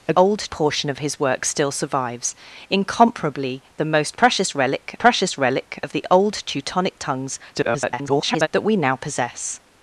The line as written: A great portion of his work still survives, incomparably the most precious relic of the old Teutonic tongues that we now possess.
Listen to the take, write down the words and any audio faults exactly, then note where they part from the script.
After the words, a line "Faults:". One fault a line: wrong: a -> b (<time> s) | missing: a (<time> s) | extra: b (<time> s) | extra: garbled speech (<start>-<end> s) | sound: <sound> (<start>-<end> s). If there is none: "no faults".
A old portion of his work still survives, incomparably the most precious relic precious relic of the old Teutonic tongues [garbled] that we now possess.
Faults:
wrong: great -> old (0.1 s)
extra: precious relic (5.0 s)
extra: garbled speech (7.5-8.5 s)